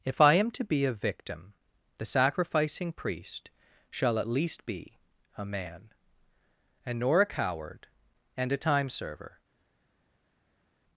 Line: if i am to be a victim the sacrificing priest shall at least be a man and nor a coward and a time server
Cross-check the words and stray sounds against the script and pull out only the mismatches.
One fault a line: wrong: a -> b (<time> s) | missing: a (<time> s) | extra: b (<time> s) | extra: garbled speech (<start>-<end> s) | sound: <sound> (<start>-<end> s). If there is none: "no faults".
no faults